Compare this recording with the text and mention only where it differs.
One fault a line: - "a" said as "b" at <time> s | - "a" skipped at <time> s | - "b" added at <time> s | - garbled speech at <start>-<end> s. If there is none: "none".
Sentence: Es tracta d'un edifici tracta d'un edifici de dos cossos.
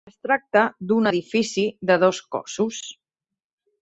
- "tracta d'un edifici" skipped at 1.6 s